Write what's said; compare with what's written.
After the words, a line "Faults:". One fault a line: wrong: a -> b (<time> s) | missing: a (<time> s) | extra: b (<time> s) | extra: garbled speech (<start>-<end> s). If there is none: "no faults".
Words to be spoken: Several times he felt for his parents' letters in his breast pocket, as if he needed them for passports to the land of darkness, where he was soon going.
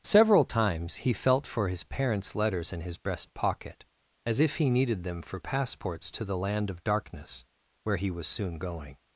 Several times he felt for his parents' letters in his breast pocket, as if he needed them for passports to the land of darkness, where he was soon going.
Faults:
no faults